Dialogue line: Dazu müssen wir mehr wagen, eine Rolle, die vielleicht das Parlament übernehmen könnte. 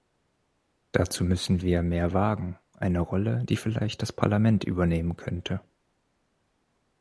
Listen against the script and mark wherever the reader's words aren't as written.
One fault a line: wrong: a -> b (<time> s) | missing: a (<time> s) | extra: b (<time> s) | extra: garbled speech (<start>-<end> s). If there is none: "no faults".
no faults